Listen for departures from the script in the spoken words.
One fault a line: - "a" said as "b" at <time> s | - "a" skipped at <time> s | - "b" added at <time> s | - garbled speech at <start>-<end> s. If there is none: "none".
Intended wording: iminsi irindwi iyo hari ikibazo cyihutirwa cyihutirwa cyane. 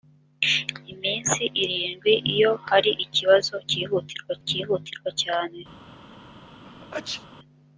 none